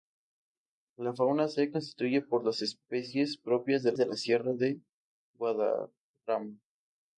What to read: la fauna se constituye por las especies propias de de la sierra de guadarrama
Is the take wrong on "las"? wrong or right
right